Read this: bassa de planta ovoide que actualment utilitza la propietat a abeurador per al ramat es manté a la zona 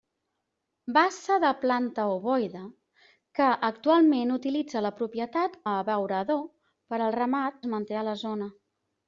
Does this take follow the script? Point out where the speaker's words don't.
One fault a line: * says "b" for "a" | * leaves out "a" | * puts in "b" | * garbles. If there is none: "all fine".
all fine